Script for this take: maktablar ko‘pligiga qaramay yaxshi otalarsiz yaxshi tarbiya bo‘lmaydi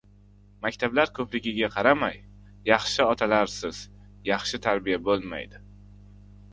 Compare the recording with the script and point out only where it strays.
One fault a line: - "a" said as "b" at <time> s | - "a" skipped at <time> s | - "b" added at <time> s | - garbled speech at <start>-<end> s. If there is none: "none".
none